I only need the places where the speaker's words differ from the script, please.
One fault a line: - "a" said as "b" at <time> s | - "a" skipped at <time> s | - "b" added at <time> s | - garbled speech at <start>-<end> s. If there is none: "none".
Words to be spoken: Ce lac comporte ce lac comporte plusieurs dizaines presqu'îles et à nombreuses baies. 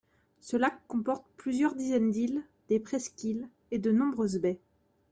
- "ce lac comporte plusieurs dizaines" said as "plusieurs dizaines d'îles des" at 1.4 s
- "à" said as "de" at 3.8 s